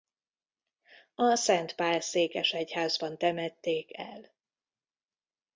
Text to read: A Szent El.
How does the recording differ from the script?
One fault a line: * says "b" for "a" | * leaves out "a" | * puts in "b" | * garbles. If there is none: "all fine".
* puts in "Pál székesegyházban temették"